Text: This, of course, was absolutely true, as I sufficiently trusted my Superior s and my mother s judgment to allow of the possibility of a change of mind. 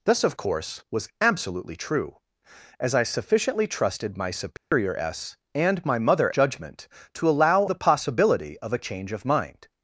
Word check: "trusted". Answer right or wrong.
right